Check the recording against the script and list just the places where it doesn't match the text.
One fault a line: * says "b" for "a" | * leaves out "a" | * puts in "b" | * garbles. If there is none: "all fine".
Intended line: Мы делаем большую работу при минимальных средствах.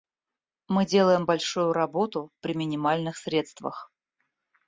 all fine